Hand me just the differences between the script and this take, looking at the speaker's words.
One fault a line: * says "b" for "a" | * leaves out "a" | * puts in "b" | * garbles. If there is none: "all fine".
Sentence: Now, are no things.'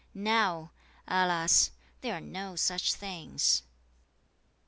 * puts in "alas there"
* puts in "such"